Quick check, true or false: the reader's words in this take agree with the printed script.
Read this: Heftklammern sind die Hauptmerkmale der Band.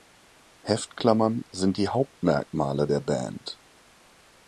true